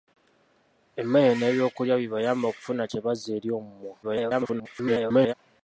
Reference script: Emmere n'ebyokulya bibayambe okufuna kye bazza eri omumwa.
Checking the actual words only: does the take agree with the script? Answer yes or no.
no